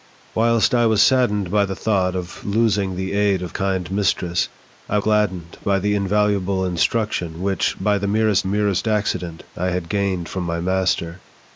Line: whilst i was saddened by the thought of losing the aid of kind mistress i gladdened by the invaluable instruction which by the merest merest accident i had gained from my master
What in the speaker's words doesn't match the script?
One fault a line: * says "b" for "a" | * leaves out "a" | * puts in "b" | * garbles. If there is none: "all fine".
all fine